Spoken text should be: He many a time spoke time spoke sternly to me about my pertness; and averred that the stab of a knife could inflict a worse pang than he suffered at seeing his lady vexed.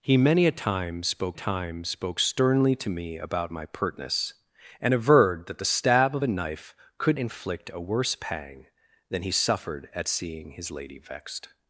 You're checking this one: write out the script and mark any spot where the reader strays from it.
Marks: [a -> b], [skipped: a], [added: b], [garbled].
He many a time spoke time spoke sternly to me about my pertness; and averred that the stab of a knife could inflict a worse pang than he suffered at seeing his lady vexed.